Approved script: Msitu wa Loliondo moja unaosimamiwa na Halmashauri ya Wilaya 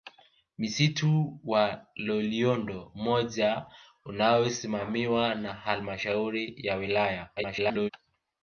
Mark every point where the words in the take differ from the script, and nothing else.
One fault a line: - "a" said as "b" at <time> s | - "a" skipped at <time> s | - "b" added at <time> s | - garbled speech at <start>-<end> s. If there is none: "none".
- garbled speech at 7.4-7.9 s